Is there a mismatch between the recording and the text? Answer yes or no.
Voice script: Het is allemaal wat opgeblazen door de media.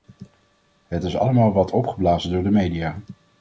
no